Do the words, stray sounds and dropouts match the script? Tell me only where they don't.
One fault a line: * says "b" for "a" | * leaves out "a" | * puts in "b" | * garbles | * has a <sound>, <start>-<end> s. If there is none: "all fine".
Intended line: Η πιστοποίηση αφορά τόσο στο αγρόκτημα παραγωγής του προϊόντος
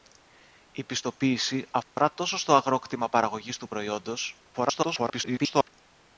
* has a dropout, 1.8-2.0 s
* garbles